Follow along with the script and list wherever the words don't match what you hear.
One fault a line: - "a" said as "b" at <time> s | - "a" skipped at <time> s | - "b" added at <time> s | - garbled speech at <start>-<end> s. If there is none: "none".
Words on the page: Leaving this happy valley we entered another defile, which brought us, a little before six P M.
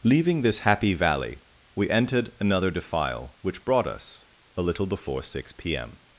none